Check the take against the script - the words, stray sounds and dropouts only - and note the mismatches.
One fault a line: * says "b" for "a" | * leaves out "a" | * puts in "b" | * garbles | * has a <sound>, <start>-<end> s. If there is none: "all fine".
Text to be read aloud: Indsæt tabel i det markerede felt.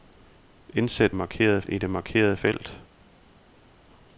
* says "markerede" for "tabel"